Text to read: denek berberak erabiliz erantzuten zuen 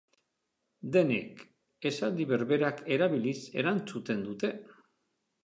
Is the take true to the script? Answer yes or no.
no